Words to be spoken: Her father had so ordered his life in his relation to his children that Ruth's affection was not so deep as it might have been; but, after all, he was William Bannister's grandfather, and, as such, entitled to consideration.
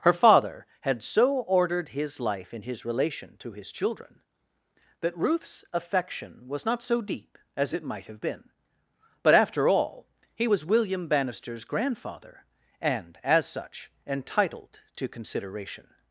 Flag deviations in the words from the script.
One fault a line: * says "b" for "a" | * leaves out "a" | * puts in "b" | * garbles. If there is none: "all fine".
all fine